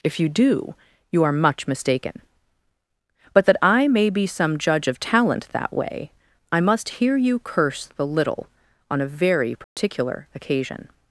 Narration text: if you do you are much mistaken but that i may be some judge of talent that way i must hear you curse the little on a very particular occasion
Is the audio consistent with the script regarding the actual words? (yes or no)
yes